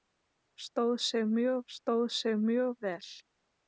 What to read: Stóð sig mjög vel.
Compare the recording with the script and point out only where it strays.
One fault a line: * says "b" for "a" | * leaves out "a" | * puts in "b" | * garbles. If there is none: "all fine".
* puts in "stóð sig mjög"